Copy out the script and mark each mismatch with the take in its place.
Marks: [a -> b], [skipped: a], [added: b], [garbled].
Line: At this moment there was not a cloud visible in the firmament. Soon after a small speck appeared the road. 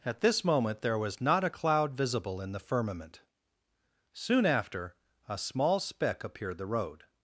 At this moment there was not a cloud visible in the firmament. Soon after a small speck appeared the road.